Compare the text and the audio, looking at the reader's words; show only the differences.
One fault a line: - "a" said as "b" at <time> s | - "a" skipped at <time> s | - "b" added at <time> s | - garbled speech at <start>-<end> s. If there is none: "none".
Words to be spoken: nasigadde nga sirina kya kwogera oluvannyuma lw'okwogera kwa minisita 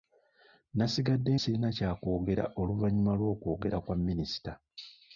- "nga" skipped at 1.3 s